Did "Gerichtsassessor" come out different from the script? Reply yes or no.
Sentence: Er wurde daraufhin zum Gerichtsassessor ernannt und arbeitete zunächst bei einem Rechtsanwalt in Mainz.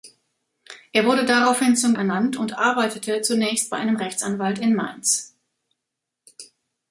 yes